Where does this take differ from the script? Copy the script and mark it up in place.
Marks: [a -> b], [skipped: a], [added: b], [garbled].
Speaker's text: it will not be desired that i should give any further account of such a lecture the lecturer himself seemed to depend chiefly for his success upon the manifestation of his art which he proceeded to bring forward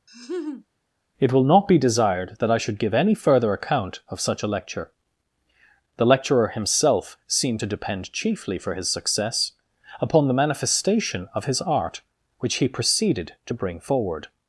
it will not be desired that i should give any further account of such a lecture the lecturer himself seemed to depend chiefly for his success upon the manifestation of his art which he proceeded to bring forward